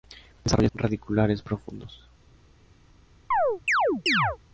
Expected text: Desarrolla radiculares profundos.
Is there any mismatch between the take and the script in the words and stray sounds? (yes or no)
yes